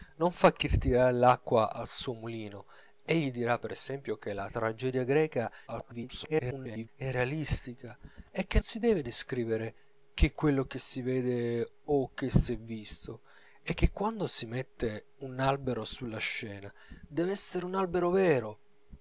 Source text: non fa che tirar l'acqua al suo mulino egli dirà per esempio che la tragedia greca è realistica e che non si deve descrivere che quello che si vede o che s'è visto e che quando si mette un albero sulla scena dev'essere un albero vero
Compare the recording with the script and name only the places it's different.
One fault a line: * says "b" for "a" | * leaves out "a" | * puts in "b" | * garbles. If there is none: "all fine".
* garbles
* leaves out "non"